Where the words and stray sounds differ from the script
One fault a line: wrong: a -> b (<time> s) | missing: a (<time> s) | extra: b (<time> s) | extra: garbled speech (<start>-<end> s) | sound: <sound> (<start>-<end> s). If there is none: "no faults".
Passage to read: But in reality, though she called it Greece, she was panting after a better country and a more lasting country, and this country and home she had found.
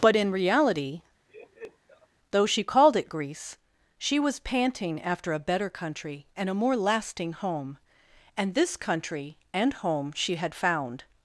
sound: laugh (1.3-2.1 s)
wrong: country -> home (7.3 s)